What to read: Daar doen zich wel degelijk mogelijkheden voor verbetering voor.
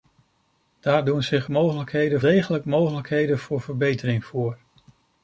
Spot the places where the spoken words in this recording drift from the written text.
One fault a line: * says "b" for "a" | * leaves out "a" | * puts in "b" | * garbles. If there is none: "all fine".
* says "mogelijkheden" for "wel"